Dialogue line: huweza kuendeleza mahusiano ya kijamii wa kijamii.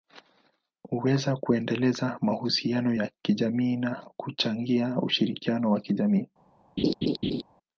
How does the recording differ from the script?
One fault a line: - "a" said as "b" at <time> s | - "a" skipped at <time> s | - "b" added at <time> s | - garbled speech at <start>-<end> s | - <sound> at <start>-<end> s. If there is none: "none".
- "na kuchangia ushirikiano" added at 3.8 s
- laugh at 6.8-7.4 s